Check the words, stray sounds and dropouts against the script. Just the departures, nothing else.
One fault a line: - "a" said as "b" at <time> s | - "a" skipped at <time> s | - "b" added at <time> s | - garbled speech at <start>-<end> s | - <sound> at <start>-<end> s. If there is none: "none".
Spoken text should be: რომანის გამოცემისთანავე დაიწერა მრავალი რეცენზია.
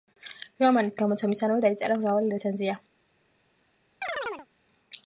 - chirp at 4.0-4.5 s